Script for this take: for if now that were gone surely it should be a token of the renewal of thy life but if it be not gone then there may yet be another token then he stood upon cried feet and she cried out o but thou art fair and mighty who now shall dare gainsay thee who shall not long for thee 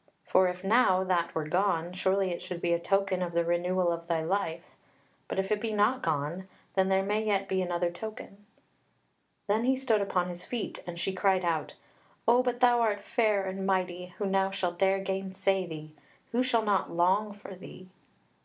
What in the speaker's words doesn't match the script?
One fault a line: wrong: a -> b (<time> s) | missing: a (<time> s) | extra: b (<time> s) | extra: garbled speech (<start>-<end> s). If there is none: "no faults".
wrong: cried -> his (10.3 s)